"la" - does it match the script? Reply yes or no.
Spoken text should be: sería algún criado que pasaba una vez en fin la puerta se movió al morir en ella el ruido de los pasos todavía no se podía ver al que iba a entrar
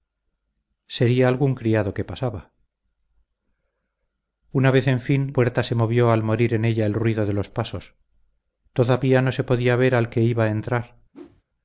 no